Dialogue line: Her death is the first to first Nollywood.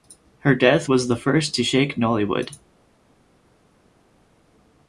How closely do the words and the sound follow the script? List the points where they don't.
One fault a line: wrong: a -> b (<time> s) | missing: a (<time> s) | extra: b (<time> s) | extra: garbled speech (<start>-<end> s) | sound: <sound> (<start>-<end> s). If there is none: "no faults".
wrong: is -> was (0.9 s)
wrong: first -> shake (1.6 s)